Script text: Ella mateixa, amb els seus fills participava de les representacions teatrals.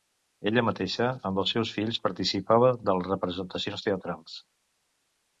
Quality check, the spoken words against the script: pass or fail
pass